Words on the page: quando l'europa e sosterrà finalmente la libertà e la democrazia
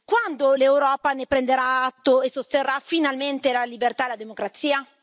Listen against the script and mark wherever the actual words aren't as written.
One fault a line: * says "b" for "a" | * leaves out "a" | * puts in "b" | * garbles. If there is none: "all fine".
* puts in "ne prenderà atto"